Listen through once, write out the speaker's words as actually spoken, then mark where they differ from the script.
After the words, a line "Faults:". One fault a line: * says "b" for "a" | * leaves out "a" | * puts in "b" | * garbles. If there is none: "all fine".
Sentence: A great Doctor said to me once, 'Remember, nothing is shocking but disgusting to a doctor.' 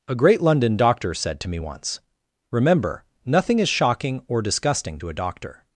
A great London doctor said to me once, 'Remember, nothing is shocking or disgusting to a doctor.'
Faults:
* puts in "London"
* says "or" for "but"